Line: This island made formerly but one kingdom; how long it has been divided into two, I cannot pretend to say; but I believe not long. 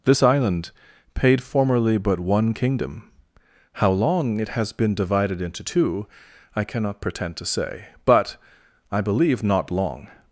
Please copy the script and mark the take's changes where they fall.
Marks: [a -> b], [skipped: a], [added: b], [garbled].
This island [made -> paid] formerly but one kingdom; how long it has been divided into two, I cannot pretend to say; but I believe not long.